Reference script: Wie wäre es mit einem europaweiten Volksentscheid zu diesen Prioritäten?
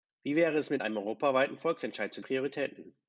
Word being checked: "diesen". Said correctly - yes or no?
no